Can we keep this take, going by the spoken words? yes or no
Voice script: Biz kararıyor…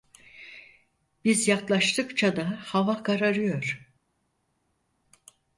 no